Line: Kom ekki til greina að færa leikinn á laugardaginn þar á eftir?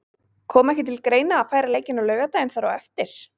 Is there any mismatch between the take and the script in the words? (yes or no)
no